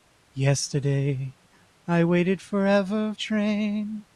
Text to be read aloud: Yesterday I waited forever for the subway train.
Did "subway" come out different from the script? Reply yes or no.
yes